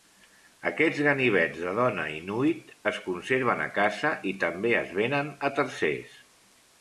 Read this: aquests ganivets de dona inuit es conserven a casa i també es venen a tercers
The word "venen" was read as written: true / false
true